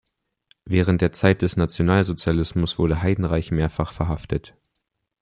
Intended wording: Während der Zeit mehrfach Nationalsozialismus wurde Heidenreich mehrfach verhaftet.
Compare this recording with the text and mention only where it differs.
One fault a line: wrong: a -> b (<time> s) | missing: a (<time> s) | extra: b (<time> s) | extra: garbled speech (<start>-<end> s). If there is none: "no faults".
wrong: mehrfach -> des (1.4 s)